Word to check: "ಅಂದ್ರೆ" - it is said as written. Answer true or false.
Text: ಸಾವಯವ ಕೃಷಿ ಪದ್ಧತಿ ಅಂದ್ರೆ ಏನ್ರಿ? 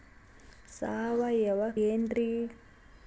false